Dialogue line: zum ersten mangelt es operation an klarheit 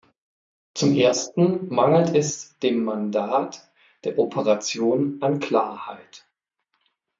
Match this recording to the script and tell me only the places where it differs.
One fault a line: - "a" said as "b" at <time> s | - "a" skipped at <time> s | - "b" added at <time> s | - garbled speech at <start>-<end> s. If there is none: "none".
- "dem mandat der" added at 2.6 s